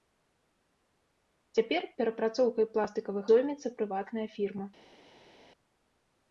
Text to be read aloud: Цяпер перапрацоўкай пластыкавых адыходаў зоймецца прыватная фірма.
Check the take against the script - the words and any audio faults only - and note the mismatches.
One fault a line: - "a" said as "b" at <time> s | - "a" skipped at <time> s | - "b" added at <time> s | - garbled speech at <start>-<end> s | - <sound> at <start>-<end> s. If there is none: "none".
- "адыходаў" skipped at 3.2 s